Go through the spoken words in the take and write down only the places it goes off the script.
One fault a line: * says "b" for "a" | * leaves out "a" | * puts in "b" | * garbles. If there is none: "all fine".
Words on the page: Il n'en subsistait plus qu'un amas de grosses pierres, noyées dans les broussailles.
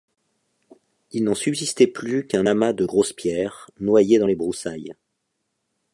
all fine